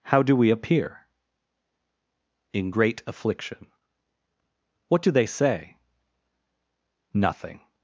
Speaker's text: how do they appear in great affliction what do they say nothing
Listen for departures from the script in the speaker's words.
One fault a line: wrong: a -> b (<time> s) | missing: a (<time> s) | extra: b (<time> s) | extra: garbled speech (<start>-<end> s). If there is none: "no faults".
wrong: they -> we (0.3 s)